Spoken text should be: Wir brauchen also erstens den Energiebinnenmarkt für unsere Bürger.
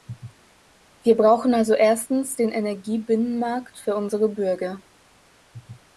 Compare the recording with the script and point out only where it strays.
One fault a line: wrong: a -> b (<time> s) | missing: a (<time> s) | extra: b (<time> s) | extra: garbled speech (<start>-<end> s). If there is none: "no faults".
no faults